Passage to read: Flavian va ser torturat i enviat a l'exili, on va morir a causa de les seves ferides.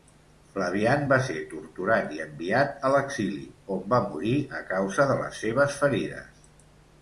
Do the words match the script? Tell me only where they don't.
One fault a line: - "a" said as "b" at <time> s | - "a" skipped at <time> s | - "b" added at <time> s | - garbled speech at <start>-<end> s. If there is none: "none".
none